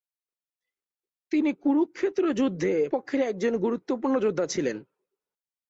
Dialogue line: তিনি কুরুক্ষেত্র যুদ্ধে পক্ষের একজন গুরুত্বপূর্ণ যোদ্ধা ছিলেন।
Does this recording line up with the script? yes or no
yes